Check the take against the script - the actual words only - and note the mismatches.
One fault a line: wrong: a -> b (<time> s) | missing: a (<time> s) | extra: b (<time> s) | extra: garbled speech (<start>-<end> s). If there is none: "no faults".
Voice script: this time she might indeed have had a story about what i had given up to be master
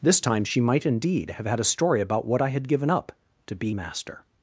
no faults